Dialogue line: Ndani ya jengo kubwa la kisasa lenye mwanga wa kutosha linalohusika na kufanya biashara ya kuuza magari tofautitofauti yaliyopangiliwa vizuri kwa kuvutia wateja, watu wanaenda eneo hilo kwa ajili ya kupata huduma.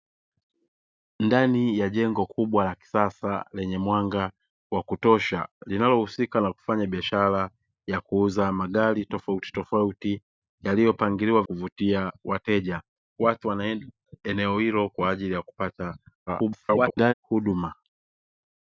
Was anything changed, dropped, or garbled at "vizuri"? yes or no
yes